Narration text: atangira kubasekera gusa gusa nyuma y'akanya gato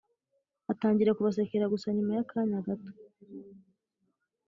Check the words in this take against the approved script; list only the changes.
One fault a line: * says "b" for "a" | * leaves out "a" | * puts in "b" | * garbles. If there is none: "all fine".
* leaves out "gusa"